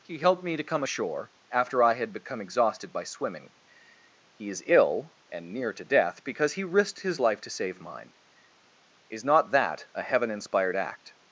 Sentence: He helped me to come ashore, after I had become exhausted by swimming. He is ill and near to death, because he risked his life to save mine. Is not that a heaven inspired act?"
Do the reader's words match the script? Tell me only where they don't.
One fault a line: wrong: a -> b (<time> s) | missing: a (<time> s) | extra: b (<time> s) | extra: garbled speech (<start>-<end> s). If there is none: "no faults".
no faults